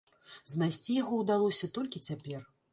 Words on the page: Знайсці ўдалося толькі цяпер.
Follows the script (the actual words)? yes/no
no